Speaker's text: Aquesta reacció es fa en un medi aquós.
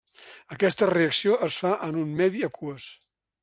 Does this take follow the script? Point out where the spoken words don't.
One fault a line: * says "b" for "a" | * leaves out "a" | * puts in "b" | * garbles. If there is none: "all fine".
all fine